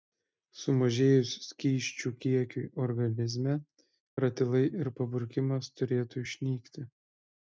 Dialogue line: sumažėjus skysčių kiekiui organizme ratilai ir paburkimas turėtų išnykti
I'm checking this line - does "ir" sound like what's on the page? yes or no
yes